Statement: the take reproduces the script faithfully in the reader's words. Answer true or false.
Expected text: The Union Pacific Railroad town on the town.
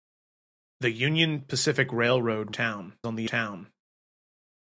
true